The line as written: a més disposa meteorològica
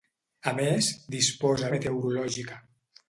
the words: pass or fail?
pass